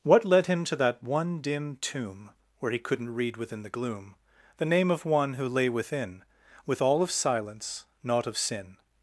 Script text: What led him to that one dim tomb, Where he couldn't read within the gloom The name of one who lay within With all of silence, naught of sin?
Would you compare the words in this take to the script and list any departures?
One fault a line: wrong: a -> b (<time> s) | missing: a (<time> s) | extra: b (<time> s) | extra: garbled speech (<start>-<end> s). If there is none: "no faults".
no faults